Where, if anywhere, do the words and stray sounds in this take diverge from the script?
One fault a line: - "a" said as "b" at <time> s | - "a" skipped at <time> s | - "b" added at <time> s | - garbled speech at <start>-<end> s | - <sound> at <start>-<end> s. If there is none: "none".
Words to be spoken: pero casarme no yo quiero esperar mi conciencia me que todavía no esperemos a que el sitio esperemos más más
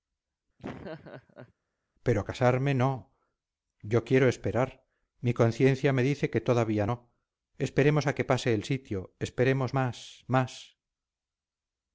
- laugh at 0.6-1.5 s
- "dice" added at 6.1 s
- "pase" added at 8.3 s